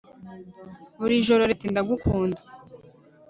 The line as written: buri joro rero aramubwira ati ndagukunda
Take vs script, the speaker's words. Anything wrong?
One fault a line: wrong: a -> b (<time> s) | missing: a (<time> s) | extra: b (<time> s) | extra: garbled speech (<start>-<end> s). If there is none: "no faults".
missing: rero aramubwira (1.4 s)